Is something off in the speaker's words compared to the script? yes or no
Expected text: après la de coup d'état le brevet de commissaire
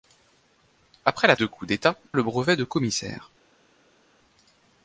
no